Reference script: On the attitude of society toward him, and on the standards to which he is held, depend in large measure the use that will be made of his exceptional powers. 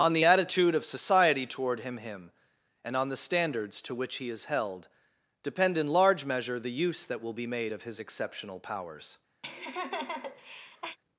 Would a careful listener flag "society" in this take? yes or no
no